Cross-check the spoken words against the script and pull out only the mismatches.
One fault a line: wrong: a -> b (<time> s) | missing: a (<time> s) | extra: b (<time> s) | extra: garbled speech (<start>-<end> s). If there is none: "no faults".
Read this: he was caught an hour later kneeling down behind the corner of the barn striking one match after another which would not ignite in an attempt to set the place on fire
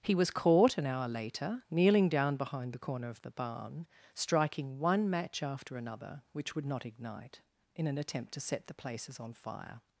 wrong: place -> places (8.7 s)